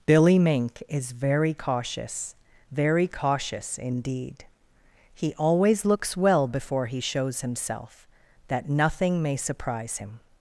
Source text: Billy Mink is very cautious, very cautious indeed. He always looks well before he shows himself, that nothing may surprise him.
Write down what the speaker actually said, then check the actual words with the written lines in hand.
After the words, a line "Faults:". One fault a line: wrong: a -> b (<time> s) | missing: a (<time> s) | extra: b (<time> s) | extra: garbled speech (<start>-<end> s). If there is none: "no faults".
Billy Mink is very cautious, very cautious indeed. He always looks well before he shows himself, that nothing may surprise him.
Faults:
no faults